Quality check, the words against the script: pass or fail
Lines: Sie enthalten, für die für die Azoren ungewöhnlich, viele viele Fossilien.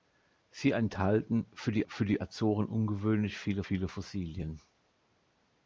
pass